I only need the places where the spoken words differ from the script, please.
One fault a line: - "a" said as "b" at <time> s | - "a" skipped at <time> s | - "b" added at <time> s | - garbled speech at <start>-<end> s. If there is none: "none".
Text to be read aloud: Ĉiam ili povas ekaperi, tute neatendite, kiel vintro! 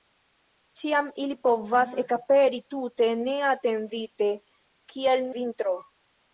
none